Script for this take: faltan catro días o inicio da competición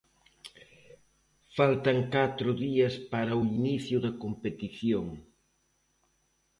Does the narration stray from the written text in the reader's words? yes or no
yes